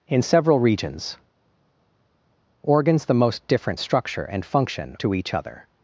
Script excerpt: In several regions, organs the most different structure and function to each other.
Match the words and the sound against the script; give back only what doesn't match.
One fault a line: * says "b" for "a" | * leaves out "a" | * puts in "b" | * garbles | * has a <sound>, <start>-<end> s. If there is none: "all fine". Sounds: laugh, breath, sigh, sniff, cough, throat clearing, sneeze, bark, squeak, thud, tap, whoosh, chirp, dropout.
all fine